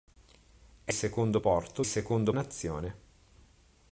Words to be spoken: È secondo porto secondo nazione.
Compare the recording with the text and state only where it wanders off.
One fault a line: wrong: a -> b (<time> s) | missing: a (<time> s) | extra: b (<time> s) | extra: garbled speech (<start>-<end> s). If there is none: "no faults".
no faults